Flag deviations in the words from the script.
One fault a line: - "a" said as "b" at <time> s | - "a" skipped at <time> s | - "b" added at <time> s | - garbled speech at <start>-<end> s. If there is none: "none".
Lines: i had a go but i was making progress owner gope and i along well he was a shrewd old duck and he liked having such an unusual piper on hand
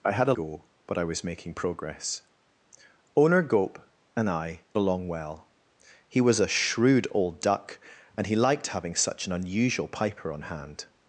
none